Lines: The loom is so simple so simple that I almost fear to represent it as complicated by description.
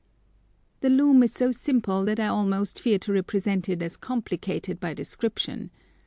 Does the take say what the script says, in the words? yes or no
no